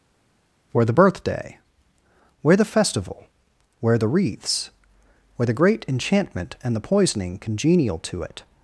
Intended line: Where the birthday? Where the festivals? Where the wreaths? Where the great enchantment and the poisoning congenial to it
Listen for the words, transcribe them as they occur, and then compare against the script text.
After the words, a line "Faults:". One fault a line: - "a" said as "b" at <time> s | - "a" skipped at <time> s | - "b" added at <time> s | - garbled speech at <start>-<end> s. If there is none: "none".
Where the birthday? Where the festival? Where the wreaths? Where the great enchantment and the poisoning congenial to it
Faults:
- "festivals" said as "festival" at 2.6 s